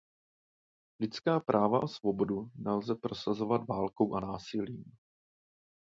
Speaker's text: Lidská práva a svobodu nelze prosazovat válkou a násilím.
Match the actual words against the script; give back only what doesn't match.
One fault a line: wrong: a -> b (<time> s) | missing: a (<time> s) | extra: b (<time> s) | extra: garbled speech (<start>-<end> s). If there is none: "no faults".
no faults